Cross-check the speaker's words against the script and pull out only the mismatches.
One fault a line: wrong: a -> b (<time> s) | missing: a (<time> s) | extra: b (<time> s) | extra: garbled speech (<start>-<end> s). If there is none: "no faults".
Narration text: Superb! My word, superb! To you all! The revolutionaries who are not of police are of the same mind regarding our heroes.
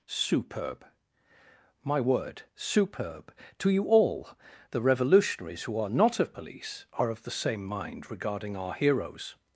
no faults